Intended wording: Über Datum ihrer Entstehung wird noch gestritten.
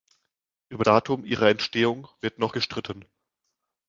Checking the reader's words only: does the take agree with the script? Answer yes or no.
yes